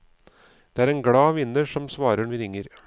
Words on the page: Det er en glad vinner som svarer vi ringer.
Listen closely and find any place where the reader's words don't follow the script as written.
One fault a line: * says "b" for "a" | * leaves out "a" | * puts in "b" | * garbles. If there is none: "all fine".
all fine